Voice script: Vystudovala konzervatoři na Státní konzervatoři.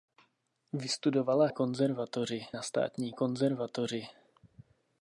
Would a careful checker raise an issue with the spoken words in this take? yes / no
no